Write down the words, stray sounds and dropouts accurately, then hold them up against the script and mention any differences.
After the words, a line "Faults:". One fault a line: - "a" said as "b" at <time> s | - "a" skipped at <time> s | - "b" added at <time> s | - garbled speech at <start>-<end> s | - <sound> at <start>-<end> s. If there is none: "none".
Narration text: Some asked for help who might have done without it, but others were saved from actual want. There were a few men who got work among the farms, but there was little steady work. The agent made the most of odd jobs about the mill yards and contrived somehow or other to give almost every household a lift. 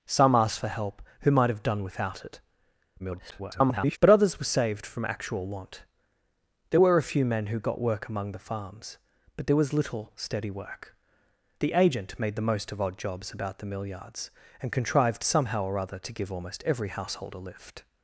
Some asked for help who might have done without it, [garbled] but others were saved from actual want. There were a few men who got work among the farms, but there was little steady work. The agent made the most of odd jobs about the mill yards and contrived somehow or other to give almost every household a lift.
Faults:
- garbled speech at 3.0-4.0 s